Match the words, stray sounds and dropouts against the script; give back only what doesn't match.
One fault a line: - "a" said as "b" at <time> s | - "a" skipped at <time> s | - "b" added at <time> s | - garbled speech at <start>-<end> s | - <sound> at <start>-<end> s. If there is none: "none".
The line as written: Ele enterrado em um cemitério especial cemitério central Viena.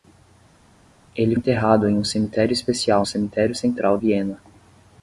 none